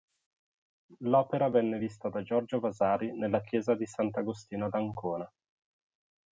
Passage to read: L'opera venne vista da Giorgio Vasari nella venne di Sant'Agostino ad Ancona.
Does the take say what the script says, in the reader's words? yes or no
no